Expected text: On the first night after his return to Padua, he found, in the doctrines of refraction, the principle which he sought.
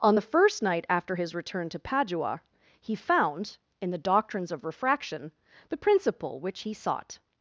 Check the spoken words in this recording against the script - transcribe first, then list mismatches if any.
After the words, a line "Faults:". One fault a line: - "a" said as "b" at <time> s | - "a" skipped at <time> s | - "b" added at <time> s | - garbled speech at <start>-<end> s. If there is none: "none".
On the first night after his return to Padua, he found, in the doctrines of refraction, the principle which he sought.
Faults:
none